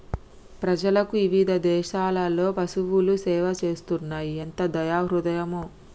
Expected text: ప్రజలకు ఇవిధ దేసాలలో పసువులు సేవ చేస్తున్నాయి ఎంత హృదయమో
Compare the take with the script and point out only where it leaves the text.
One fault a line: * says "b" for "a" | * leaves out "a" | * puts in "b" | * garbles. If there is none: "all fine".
* puts in "దయా"